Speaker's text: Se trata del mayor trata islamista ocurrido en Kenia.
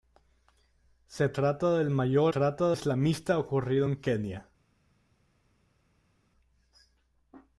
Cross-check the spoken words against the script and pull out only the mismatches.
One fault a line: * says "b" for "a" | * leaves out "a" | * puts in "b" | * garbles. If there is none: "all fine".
all fine